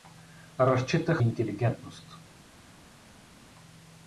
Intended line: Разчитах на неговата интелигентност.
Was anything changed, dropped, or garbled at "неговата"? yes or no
yes